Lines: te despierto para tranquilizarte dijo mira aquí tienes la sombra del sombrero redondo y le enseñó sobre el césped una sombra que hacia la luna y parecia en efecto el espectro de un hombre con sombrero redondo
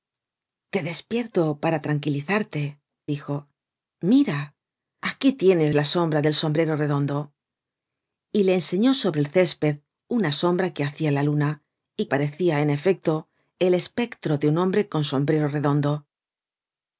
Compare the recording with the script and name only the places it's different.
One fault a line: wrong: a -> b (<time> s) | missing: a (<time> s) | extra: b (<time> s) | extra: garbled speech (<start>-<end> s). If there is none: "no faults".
no faults